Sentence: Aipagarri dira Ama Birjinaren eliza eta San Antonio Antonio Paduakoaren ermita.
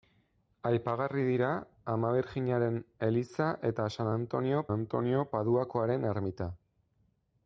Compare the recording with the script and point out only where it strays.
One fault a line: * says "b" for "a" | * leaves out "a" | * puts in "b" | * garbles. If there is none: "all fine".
all fine